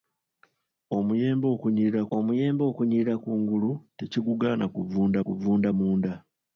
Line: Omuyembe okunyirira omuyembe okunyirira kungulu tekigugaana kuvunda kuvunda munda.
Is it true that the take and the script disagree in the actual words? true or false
false